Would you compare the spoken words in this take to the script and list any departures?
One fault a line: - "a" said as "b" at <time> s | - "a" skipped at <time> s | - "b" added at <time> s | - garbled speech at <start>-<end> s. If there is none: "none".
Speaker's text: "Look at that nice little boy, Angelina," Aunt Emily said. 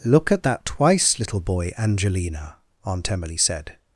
- "nice" said as "twice" at 0.6 s